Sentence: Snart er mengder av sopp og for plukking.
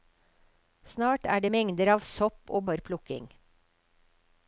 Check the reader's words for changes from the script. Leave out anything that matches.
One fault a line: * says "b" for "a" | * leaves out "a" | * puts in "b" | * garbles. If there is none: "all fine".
all fine